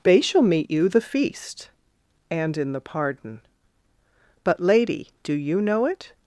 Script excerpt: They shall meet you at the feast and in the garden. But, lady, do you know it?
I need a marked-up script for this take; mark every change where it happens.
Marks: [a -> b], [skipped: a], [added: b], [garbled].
They shall meet you [skipped: at] the feast and in the [garden. -> pardon] But, lady, do you know it?